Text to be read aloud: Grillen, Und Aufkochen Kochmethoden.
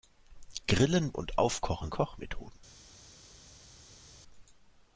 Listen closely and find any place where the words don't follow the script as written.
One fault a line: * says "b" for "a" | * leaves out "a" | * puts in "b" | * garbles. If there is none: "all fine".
all fine